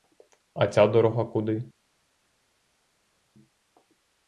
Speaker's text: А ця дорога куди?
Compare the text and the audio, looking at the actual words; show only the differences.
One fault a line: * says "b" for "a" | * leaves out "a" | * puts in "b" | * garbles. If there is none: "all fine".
all fine